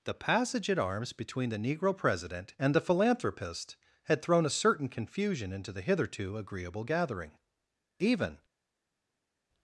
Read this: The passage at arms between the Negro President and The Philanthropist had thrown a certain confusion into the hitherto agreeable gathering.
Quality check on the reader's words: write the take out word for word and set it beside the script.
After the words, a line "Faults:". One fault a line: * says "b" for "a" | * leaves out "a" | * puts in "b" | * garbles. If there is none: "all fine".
The passage at arms between the Negro President and The Philanthropist had thrown a certain confusion into the hitherto agreeable gathering. Even
Faults:
* puts in "Even"